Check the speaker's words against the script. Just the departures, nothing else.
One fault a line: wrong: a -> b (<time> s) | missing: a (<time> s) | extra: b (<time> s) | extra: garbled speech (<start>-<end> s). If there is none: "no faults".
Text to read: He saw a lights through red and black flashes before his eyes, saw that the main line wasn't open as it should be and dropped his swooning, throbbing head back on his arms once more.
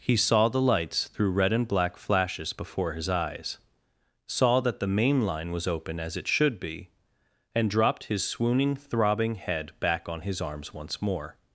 wrong: a -> the (0.5 s)
wrong: wasn't -> was (5.5 s)